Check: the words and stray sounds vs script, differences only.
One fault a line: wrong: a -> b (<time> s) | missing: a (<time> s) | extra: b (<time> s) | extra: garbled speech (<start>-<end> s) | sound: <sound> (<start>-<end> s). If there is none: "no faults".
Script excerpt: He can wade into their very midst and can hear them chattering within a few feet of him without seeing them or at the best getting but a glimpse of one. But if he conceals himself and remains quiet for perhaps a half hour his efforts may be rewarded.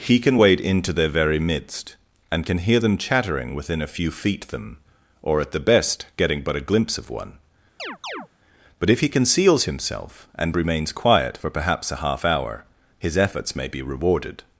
missing: of him without seeing (4.5 s)
sound: chirp (7.8-8.3 s)